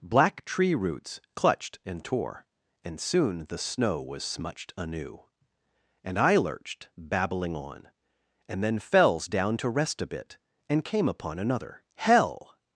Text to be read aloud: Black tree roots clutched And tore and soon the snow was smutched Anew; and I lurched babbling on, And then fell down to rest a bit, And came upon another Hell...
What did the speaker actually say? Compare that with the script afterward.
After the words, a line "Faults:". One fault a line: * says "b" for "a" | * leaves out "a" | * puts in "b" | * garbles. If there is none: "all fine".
Black tree roots clutched And tore and soon the snow was smutched Anew; and I lurched babbling on, And then fells down to rest a bit, And came upon another Hell...
Faults:
* says "fells" for "fell"